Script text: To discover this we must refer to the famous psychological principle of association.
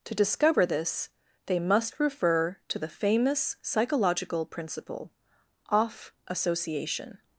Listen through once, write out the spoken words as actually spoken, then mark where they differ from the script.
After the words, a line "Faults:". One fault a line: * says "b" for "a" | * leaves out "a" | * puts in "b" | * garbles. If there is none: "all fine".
To discover this they must refer to the famous psychological principle off association.
Faults:
* says "they" for "we"
* says "off" for "of"